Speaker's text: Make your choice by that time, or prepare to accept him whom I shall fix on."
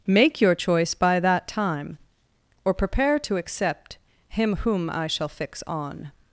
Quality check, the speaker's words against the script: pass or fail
pass